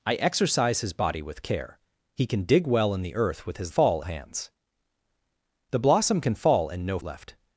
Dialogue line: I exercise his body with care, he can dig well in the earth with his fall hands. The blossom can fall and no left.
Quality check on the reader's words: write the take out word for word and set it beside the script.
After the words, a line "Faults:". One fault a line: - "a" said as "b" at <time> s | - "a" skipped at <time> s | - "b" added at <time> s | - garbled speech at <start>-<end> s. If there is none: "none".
I exercise his body with care, he can dig well in the earth with his fall hands. The blossom can fall and no left.
Faults:
none